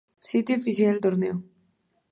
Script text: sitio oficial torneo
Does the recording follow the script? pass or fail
pass